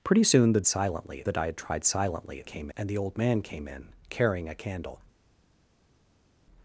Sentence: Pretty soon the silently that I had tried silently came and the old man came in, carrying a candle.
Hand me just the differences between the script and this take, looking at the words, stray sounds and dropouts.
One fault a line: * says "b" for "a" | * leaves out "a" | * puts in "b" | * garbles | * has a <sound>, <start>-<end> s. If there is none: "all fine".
all fine